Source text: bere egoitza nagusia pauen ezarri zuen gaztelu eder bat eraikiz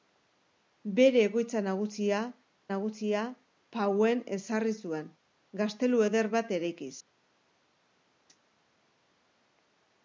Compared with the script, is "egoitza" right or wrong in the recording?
right